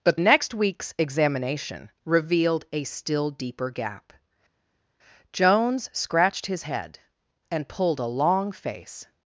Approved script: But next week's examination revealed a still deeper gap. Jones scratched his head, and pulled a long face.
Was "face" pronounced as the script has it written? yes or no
yes